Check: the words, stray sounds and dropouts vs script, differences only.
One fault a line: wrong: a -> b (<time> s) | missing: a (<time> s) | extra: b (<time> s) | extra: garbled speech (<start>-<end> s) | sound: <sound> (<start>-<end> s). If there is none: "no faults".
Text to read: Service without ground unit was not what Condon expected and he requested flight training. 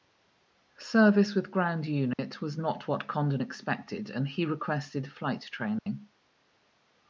wrong: without -> with (1.4 s)
sound: dropout (2.1-2.2 s)
sound: dropout (5.8-5.9 s)